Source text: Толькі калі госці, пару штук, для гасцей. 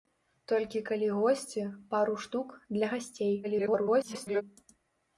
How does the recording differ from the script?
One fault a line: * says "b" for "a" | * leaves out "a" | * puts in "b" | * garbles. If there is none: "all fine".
* garbles